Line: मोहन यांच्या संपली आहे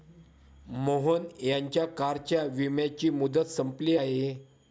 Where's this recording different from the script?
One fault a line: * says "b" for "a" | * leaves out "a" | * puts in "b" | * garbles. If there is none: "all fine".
* puts in "कारच्या विम्याची मुदत"